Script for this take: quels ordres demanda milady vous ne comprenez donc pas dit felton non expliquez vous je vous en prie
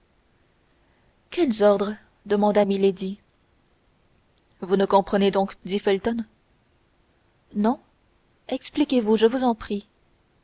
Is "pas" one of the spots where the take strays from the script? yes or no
yes